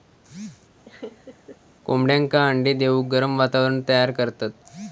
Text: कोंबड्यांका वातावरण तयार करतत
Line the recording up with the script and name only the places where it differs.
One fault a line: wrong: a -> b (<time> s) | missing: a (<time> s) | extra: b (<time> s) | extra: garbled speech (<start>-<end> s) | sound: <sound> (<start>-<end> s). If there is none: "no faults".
sound: laugh (0.9-1.6 s)
extra: अंडे देऊक गरम (2.5 s)